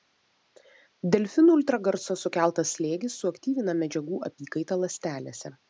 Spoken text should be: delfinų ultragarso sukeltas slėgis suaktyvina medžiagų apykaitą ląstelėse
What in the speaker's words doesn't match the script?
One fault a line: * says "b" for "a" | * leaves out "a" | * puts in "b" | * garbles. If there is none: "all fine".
all fine